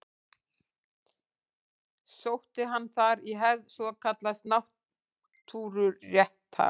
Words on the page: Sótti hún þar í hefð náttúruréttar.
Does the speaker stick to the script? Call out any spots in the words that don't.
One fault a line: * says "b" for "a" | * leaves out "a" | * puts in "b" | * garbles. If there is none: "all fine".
* says "hann" for "hún"
* puts in "svokallaðs"